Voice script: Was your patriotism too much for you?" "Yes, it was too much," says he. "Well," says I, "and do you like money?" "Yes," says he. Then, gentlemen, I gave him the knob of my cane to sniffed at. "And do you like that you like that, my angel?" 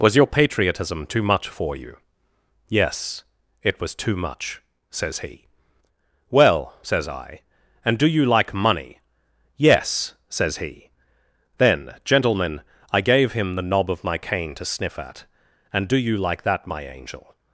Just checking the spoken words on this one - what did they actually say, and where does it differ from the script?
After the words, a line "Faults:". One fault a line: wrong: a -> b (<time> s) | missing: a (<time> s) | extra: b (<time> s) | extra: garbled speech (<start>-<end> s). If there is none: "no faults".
Was your patriotism too much for you?" "Yes, it was too much," says he. "Well," says I, "and do you like money?" "Yes," says he. Then, gentlemen, I gave him the knob of my cane to sniff at. "And do you like that, my angel?"
Faults:
wrong: sniffed -> sniff (14.7 s)
missing: you like that (16.7 s)